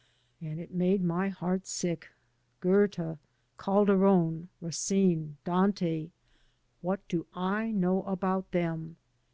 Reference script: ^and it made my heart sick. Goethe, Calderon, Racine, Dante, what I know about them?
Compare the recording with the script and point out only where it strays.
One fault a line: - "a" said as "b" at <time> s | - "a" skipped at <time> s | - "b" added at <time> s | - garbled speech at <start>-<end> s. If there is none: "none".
- "do" added at 7.1 s